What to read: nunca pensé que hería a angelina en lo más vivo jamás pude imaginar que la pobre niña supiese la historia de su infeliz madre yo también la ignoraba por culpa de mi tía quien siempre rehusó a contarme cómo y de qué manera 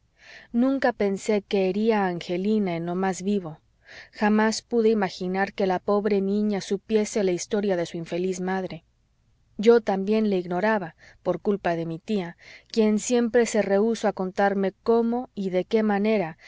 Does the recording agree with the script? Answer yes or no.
no